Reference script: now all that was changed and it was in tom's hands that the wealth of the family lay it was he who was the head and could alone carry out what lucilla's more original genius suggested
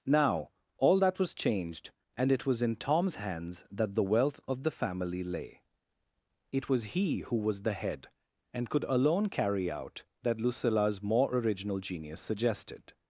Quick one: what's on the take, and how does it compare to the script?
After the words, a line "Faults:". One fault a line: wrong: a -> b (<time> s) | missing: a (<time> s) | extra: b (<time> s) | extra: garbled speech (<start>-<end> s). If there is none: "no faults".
now all that was changed and it was in tom's hands that the wealth of the family lay it was he who was the head and could alone carry out that lucilla's more original genius suggested
Faults:
wrong: what -> that (10.2 s)